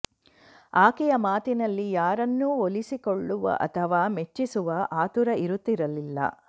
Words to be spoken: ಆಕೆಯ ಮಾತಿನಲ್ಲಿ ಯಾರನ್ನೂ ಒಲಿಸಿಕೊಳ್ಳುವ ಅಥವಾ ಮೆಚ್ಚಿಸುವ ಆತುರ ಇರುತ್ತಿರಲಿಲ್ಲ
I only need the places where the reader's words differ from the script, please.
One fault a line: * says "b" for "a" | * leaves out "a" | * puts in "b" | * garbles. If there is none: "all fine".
all fine